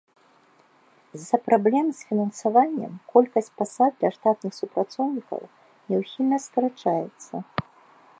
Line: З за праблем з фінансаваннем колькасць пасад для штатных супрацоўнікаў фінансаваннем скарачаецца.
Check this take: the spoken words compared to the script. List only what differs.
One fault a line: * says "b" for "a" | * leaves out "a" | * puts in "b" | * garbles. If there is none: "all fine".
* says "няўхільна" for "фінансаваннем"